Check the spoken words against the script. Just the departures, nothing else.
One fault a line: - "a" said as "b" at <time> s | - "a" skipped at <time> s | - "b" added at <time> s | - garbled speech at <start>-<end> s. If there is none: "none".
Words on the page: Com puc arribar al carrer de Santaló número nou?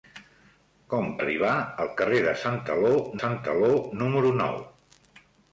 - "puc" skipped at 1.1 s
- "Santaló" added at 3.2 s